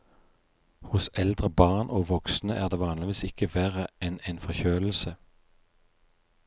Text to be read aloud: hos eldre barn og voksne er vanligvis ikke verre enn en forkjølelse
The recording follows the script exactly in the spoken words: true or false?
false